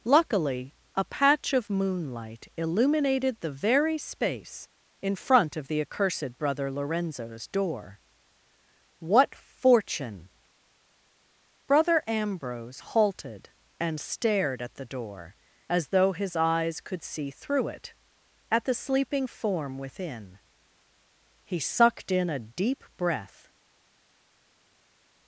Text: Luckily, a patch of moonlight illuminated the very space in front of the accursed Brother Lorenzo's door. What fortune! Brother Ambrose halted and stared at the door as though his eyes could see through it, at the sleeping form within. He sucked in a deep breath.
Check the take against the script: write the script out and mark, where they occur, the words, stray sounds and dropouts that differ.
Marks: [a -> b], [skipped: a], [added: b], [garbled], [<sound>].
Luckily, a patch of moonlight illuminated the very space in front of the accursed Brother Lorenzo's door. What fortune! Brother Ambrose halted and stared at the door as though his eyes could see through it, at the sleeping form within. He sucked in a deep breath.